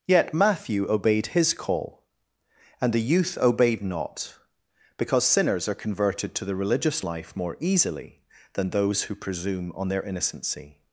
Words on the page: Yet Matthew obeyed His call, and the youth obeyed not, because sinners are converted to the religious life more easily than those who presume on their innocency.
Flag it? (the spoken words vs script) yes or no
no